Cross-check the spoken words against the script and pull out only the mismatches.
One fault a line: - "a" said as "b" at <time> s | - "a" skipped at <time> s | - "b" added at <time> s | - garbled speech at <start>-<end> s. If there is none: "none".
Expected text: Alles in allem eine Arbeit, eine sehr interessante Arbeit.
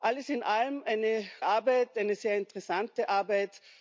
none